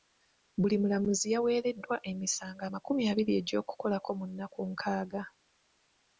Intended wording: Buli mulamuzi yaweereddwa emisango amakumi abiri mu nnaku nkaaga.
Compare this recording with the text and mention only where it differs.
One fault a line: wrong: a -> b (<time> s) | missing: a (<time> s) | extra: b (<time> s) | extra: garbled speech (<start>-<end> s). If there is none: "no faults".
extra: egy'okukolako (3.4 s)